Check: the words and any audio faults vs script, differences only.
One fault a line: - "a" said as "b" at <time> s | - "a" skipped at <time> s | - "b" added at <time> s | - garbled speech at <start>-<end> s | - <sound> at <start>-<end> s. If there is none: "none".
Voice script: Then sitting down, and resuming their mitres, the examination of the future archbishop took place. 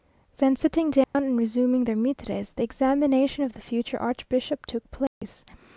- dropout at 1.0-1.1 s
- dropout at 5.1-5.2 s